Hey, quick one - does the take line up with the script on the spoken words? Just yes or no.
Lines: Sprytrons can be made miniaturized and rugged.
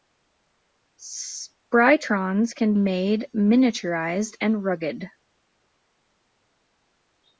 no